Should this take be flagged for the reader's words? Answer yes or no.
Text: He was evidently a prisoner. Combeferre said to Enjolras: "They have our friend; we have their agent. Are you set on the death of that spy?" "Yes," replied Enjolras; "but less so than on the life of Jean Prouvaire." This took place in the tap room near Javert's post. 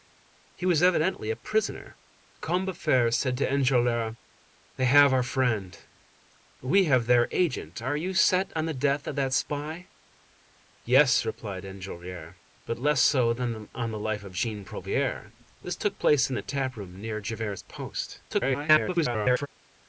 yes